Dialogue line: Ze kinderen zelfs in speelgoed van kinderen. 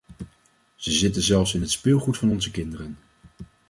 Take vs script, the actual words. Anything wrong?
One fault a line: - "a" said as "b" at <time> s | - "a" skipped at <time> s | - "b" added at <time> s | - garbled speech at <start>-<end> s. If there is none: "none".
- "kinderen" said as "zitten" at 0.9 s
- "het" added at 1.6 s
- "onze" added at 2.3 s